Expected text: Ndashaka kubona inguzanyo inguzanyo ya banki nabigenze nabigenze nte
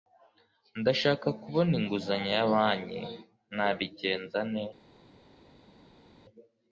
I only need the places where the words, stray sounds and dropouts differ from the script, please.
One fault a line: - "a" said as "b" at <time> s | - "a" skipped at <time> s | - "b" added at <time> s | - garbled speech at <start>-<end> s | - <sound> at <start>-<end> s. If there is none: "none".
- "inguzanyo" skipped at 2.3 s
- "nabigenze" skipped at 4.4 s